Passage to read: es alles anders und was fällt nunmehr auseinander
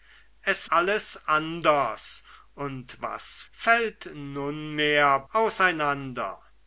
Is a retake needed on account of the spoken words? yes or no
no